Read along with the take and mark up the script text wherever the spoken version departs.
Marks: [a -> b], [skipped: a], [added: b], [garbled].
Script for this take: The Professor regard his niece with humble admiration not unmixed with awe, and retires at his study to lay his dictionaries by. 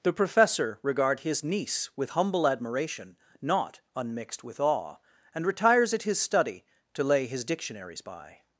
The Professor regard his niece with humble admiration not unmixed with awe, and retires at his study to lay his dictionaries by.